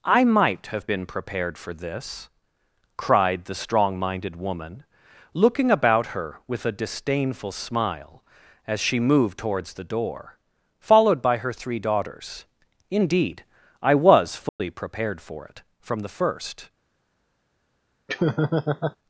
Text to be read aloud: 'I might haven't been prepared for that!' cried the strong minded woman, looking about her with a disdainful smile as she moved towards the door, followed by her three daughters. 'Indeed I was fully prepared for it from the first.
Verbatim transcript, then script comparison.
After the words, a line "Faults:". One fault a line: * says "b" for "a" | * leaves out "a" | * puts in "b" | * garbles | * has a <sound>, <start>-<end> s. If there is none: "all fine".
'I might have been prepared for this!' cried the strong minded woman, looking about her with a disdainful smile as she moved towards the door, followed by her three daughters. 'Indeed I was fully prepared for it from the first.
Faults:
* says "have" for "haven't"
* says "this" for "that"
* has a dropout, 14.5-14.6 s
* has a laugh, 18.1-19.0 s